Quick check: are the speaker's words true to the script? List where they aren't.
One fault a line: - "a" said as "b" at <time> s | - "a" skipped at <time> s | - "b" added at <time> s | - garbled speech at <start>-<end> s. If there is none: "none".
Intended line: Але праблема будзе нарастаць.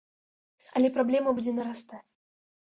none